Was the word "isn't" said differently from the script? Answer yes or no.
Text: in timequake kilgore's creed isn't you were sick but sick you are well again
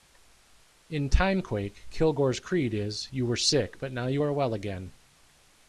yes